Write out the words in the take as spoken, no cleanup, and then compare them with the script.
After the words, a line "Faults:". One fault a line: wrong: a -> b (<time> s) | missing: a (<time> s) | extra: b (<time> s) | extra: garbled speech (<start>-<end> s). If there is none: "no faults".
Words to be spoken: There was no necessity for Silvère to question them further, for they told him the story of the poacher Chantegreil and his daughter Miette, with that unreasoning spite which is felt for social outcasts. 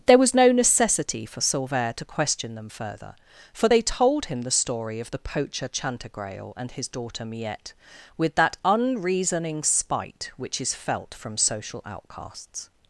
There was no necessity for Silvère to question them further, for they told him the story of the poacher Chantegreil and his daughter Miette, with that unreasoning spite which is felt from social outcasts.
Faults:
wrong: for -> from (11.1 s)